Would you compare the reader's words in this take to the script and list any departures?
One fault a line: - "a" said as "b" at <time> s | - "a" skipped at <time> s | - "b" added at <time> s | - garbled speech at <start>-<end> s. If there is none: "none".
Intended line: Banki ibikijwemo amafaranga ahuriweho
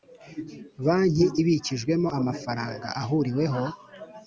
none